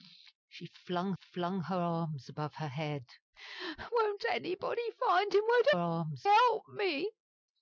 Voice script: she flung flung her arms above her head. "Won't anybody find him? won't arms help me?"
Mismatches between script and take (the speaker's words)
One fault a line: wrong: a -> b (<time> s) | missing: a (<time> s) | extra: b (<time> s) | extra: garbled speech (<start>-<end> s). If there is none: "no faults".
no faults